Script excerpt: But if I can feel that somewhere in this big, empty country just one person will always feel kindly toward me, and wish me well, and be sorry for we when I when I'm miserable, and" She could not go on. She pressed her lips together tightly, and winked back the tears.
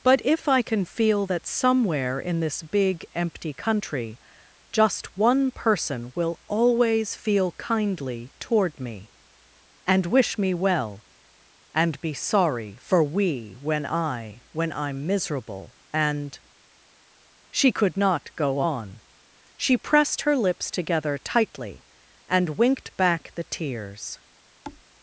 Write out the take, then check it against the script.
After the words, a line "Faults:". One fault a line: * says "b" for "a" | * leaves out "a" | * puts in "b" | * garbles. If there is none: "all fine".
But if I can feel that somewhere in this big, empty country just one person will always feel kindly toward me, and wish me well, and be sorry for we when I when I'm miserable, and" She could not go on. She pressed her lips together tightly, and winked back the tears.
Faults:
all fine